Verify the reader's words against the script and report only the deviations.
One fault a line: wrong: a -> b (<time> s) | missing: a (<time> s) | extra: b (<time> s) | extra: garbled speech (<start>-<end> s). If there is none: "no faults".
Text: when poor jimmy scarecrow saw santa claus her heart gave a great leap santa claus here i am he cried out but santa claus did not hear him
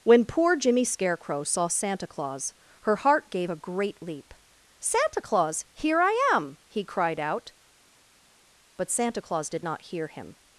no faults